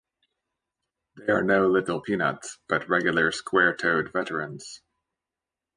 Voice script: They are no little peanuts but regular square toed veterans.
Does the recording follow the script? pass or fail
pass